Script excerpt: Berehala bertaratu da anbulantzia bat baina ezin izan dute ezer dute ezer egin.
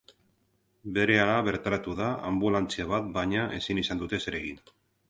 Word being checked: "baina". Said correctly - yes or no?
yes